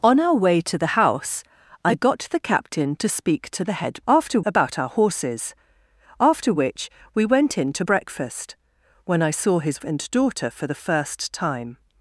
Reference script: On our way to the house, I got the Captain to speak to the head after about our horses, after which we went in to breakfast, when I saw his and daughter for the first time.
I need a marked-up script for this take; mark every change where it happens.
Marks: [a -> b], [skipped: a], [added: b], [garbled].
On our way to the house, I got the Captain to speak to the head after about our horses, after which we went in to breakfast, when I saw his and daughter for the first time.